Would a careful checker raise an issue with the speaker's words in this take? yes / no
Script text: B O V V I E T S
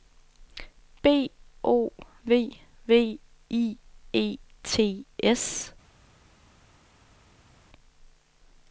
no